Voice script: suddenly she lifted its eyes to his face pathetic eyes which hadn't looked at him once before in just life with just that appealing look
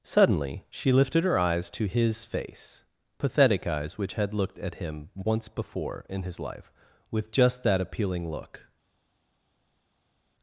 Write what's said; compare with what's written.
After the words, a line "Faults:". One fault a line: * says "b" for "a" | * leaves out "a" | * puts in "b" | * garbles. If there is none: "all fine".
suddenly she lifted her eyes to his face pathetic eyes which had looked at him once before in his life with just that appealing look
Faults:
* says "her" for "its"
* says "had" for "hadn't"
* says "his" for "just"